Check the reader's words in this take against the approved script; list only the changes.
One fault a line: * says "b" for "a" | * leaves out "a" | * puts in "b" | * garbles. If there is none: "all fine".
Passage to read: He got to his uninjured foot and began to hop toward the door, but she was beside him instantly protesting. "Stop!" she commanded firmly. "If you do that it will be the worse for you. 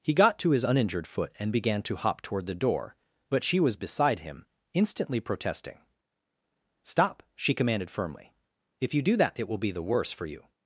all fine